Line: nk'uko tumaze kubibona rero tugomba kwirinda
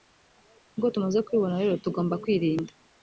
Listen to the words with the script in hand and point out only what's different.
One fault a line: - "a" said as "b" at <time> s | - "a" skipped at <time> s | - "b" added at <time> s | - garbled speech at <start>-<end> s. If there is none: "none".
none